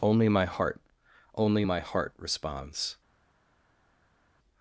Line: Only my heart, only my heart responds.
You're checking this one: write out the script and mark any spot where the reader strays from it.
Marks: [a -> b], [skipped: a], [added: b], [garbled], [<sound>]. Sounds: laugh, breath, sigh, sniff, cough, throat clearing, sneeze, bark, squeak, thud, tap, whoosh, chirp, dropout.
Only my heart, only my heart responds.